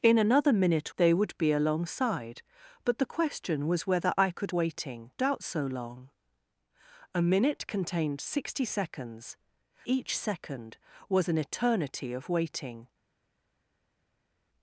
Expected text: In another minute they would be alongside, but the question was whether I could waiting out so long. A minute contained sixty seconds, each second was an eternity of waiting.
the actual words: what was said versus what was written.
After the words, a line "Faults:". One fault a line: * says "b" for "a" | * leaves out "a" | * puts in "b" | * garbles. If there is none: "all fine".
In another minute they would be alongside, but the question was whether I could waiting out so long. A minute contained sixty seconds, each second was an eternity of waiting.
Faults:
all fine